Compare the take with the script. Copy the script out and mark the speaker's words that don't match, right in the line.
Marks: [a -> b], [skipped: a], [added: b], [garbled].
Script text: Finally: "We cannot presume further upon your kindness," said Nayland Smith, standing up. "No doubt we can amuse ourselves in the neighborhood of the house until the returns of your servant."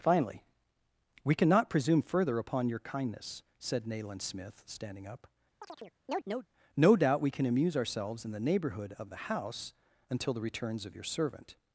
Finally: "We cannot presume further upon your kindness," said Nayland Smith, standing up. "No doubt we can amuse ourselves in the neighborhood of the house until the returns of your servant."